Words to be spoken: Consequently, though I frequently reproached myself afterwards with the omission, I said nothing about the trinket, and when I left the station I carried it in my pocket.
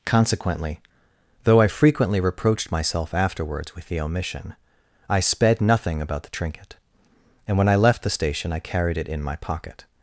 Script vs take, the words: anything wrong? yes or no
yes